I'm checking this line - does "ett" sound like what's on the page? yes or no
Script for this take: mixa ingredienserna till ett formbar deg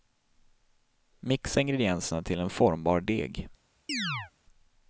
no